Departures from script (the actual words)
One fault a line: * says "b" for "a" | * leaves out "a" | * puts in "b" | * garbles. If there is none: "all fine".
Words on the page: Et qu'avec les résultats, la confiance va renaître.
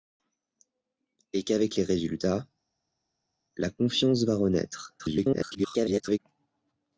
* garbles